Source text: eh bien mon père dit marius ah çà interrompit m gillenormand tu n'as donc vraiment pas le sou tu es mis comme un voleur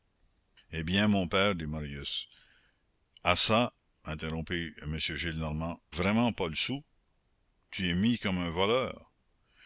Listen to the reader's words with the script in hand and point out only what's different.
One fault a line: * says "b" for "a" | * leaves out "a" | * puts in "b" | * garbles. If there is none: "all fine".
* leaves out "tu n'as donc"